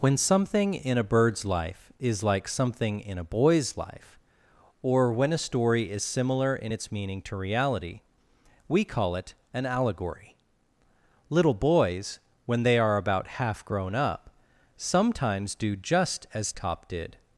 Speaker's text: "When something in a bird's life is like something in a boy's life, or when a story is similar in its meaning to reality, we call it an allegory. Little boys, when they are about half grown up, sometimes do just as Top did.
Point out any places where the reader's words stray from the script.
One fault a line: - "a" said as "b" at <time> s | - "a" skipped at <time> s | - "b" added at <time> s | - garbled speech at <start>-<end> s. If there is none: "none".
none